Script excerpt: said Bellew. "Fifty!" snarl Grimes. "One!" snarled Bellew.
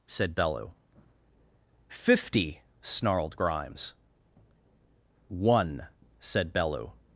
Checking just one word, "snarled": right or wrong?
wrong